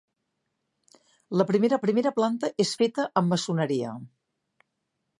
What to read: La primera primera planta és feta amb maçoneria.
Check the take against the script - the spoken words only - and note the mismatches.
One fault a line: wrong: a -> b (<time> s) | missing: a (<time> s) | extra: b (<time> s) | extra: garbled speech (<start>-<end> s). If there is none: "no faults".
no faults